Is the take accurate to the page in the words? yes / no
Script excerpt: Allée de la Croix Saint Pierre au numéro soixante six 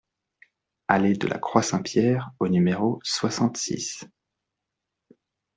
yes